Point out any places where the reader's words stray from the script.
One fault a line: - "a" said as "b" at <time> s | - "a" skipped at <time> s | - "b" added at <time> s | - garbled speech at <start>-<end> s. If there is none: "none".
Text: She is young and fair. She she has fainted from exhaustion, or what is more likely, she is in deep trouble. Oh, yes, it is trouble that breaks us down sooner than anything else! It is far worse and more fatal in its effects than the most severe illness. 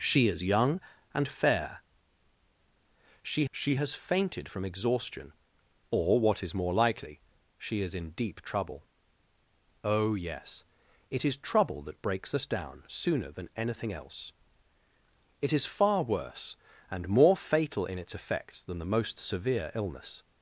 none